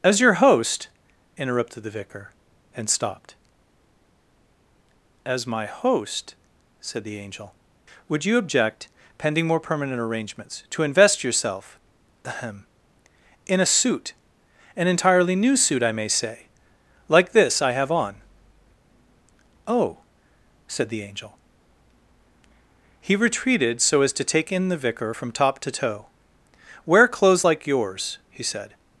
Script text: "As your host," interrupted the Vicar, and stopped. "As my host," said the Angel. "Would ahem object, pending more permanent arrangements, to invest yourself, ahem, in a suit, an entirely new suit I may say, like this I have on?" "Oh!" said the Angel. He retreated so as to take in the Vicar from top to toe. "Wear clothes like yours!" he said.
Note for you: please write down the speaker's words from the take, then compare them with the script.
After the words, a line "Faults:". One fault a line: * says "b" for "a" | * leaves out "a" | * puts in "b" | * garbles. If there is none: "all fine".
"As your host," interrupted the Vicar, and stopped. "As my host," said the Angel. "Would you object, pending more permanent arrangements, to invest yourself, ahem, in a suit, an entirely new suit I may say, like this I have on?" "Oh!" said the Angel. He retreated so as to take in the Vicar from top to toe. "Wear clothes like yours!" he said.
Faults:
* says "you" for "ahem"